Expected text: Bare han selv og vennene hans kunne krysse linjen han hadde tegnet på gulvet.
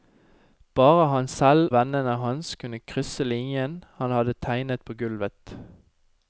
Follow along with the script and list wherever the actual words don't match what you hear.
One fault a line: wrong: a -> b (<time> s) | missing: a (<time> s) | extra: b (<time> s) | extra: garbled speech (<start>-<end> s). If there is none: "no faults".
missing: og (1.7 s)